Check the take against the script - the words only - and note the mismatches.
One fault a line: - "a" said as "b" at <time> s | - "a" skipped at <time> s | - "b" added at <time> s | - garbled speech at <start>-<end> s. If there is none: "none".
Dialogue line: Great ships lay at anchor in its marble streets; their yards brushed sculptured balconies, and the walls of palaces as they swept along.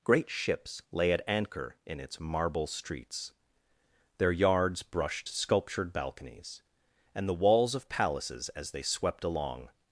none